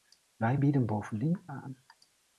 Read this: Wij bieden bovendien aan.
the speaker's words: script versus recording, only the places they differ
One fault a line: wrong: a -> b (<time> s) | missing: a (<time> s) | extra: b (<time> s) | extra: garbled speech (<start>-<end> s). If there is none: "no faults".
no faults